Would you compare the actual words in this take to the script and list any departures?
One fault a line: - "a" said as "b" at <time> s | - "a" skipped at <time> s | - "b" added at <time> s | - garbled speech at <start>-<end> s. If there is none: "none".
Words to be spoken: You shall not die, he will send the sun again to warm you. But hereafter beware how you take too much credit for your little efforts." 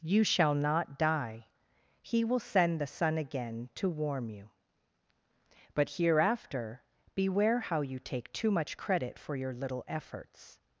none